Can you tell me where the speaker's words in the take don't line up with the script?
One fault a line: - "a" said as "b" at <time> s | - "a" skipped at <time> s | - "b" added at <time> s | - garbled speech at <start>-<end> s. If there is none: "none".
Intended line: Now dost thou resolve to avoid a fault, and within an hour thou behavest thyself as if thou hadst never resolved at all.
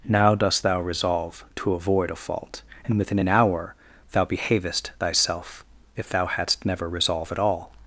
- "as" skipped at 5.6 s
- "resolved" said as "resolve" at 6.9 s